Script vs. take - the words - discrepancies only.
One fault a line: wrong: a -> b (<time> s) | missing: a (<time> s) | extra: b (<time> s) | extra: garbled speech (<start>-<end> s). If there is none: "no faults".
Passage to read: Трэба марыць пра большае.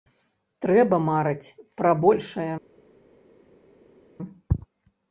no faults